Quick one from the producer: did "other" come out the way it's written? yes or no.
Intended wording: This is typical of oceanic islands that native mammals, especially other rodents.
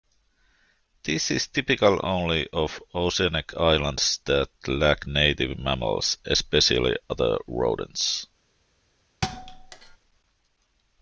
yes